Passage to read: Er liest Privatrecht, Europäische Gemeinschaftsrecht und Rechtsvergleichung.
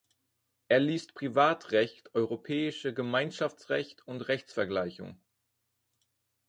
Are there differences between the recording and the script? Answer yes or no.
no